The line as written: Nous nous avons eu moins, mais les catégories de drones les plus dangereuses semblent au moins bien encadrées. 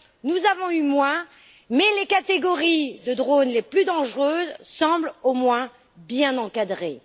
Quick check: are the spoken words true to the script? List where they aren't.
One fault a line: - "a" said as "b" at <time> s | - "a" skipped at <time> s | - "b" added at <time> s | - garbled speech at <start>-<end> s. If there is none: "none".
- "nous" skipped at 0.4 s